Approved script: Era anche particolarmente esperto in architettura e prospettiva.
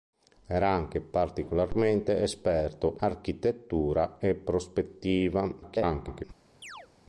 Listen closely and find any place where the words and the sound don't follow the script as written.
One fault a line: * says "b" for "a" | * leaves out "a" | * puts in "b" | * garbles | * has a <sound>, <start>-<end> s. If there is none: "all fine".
* leaves out "in"
* garbles
* has a chirp, 6.6-6.9 s